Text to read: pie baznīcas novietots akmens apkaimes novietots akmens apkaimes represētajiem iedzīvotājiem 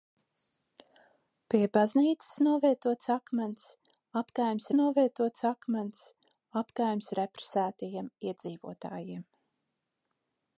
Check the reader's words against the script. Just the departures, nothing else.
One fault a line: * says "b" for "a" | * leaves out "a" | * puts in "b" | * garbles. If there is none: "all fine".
all fine